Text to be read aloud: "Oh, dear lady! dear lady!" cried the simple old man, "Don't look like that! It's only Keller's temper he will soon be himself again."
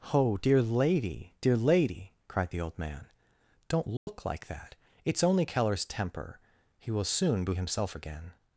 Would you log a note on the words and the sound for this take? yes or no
yes